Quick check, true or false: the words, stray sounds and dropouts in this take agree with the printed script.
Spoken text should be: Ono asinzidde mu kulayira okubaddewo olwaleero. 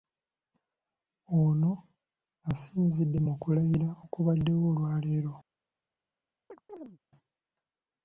false